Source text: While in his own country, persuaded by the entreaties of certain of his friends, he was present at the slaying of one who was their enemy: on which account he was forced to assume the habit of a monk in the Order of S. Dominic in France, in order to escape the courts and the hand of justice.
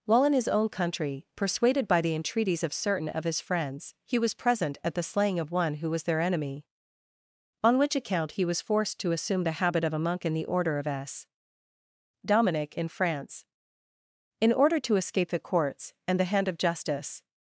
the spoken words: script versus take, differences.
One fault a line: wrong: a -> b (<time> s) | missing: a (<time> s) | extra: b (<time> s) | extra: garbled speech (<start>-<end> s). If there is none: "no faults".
no faults